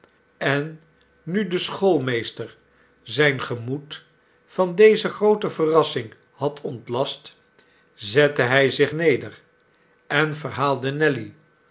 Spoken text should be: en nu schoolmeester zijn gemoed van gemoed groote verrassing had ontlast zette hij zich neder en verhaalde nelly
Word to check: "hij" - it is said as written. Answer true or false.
true